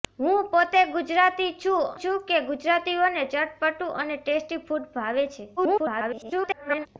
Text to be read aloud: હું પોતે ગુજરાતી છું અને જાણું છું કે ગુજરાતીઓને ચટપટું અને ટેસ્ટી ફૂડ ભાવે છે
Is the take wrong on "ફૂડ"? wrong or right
right